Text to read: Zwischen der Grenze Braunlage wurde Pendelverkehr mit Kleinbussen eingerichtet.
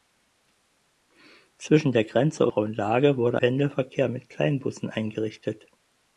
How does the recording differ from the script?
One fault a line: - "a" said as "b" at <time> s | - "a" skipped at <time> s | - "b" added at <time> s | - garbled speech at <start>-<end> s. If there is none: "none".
none